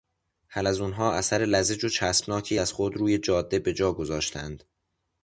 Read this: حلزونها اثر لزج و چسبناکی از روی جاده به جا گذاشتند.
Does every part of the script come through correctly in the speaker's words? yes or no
no